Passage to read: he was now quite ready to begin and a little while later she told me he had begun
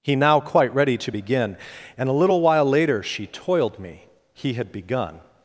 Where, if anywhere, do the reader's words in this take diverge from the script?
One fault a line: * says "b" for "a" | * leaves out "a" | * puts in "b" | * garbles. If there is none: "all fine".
* leaves out "was"
* says "toiled" for "told"